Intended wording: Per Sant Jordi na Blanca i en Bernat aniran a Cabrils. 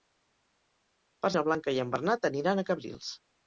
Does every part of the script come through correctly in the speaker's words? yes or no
no